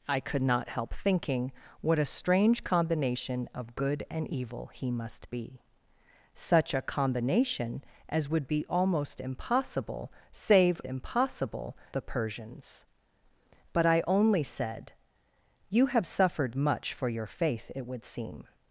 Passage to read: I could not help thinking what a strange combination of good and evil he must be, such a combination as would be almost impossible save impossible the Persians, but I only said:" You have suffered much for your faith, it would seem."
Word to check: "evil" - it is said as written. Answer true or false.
true